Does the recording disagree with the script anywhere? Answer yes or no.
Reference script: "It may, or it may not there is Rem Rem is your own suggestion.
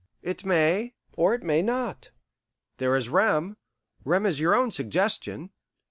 no